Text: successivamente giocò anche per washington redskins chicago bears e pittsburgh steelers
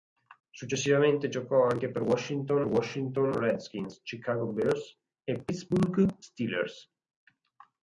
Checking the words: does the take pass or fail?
fail